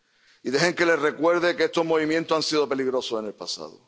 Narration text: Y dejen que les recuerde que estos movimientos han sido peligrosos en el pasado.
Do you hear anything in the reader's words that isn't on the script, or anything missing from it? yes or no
no